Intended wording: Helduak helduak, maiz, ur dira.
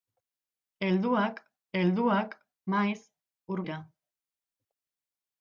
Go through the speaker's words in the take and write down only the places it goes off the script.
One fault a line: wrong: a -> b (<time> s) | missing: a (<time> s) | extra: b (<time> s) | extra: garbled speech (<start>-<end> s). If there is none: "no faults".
no faults